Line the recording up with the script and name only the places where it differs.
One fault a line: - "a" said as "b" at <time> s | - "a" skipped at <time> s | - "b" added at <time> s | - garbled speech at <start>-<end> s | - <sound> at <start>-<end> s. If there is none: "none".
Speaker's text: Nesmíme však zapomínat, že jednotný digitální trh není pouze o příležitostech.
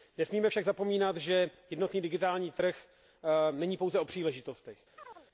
- chirp at 5.0-5.3 s